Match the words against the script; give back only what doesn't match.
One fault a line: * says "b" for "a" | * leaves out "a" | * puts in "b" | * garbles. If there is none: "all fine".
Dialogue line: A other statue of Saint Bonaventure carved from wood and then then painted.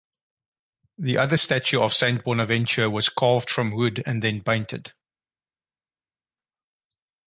* says "The" for "A"
* puts in "was"
* leaves out "then"